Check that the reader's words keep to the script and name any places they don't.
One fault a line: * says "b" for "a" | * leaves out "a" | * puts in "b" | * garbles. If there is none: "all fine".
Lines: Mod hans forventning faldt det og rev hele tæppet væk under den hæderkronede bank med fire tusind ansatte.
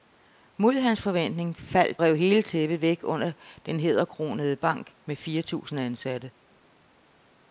* leaves out "det og"